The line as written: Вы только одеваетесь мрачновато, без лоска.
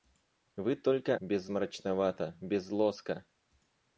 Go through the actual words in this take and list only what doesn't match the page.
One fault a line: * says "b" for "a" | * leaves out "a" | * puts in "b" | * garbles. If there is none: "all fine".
* says "без" for "одеваетесь"